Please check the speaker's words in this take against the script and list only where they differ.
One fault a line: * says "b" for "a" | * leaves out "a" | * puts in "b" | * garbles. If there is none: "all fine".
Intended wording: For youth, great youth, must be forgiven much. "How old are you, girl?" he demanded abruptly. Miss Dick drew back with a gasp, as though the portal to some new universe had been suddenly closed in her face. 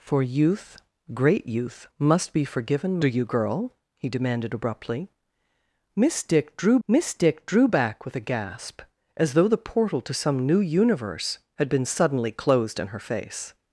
* leaves out "much How old"
* puts in "miss Dick drew"